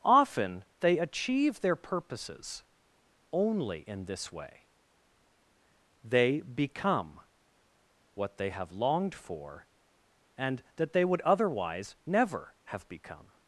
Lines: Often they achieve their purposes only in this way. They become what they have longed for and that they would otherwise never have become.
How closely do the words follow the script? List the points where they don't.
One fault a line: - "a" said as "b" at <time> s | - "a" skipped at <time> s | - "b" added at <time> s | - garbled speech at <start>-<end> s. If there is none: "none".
none